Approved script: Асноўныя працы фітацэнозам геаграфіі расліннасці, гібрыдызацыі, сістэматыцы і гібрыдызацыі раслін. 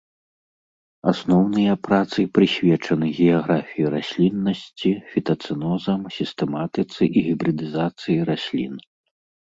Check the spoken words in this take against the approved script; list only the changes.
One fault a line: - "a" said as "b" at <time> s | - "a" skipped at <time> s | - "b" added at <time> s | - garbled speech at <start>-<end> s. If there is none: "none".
- "фітацэнозам" said as "прысвечаны" at 2.4 s
- "гібрыдызацыі" said as "фітацэнозам" at 5.1 s